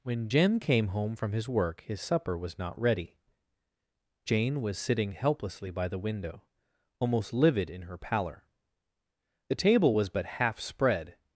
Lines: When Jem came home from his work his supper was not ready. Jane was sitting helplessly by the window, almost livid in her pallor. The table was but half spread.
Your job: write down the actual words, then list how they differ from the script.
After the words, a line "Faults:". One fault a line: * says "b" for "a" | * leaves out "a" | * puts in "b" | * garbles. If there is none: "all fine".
When Jem came home from his work his supper was not ready. Jane was sitting helplessly by the window, almost livid in her pallor. The table was but half spread.
Faults:
all fine